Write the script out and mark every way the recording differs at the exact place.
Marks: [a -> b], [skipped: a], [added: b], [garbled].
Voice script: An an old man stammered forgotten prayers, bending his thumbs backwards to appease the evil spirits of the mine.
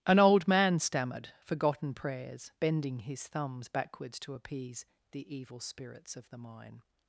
An [skipped: an] old man stammered forgotten prayers, bending his thumbs backwards to appease the evil spirits of the mine.